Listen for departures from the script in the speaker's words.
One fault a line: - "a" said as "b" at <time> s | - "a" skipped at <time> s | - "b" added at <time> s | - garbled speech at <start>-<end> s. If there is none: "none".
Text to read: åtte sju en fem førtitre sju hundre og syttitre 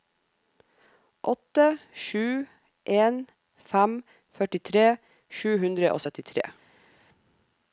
none